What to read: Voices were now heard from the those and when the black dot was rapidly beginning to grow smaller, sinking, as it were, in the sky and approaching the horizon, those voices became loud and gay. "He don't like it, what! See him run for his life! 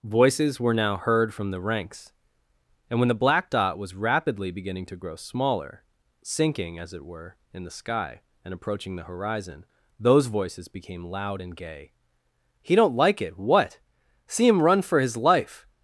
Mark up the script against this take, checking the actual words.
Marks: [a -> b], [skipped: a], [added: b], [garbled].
Voices were now heard from the [those -> ranks] and when the black dot was rapidly beginning to grow smaller, sinking, as it were, in the sky and approaching the horizon, those voices became loud and gay. "He don't like it, what! See him run for his life!